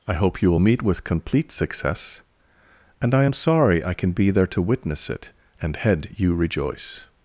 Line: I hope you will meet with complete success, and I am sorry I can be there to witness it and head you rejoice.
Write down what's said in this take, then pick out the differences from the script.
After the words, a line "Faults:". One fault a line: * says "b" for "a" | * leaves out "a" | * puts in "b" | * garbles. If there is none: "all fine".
I hope you will meet with complete success, and I am sorry I can be there to witness it and head you rejoice.
Faults:
all fine